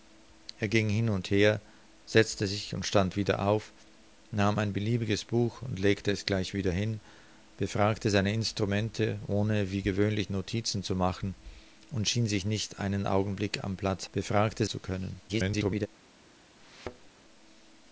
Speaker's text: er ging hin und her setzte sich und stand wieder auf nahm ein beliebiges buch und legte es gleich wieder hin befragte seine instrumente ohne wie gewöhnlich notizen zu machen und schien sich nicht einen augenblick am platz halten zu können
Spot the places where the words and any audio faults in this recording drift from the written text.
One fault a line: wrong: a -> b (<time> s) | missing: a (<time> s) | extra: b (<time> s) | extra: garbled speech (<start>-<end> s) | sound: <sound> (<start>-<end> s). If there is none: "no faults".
wrong: halten -> befragte (14.1 s)
extra: garbled speech (15.3-15.9 s)
sound: thud (16.6-17.1 s)